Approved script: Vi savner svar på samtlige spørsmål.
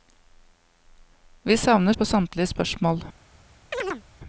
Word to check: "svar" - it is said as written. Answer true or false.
false